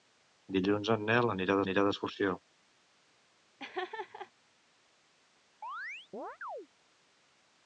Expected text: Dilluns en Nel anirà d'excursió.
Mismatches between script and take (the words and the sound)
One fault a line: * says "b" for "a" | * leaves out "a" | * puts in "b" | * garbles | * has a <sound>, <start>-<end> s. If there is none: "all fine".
* puts in "anirà"
* has a laugh, 3.6-4.3 s
* has a chirp, 5.6-6.7 s